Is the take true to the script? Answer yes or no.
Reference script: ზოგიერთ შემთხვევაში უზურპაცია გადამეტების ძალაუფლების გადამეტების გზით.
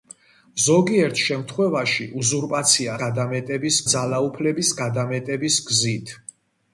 yes